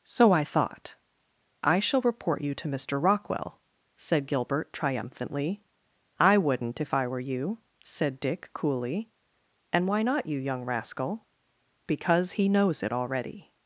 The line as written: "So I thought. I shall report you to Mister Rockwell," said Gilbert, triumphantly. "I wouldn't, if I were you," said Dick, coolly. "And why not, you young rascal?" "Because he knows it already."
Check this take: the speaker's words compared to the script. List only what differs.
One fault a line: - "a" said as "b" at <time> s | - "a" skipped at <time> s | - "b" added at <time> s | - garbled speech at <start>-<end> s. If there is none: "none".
none